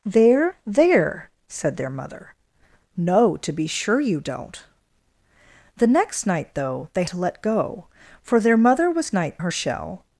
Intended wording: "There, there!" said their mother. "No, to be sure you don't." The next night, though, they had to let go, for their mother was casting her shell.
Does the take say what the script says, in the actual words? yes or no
no